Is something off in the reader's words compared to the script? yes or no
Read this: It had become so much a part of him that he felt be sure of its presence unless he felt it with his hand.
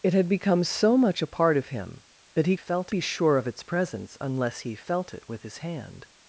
no